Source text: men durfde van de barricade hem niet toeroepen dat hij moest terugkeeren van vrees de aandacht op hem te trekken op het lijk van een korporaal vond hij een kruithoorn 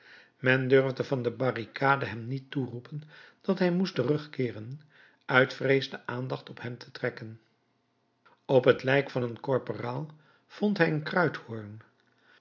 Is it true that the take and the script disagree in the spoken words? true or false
true